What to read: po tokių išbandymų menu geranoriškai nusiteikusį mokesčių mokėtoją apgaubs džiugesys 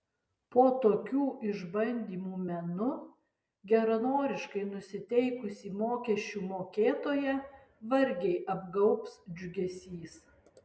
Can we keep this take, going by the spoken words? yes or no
no